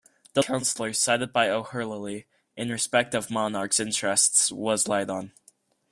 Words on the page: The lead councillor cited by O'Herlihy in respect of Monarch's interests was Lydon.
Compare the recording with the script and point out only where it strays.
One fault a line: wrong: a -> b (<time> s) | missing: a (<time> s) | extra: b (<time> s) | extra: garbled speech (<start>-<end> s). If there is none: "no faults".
missing: lead (0.4 s)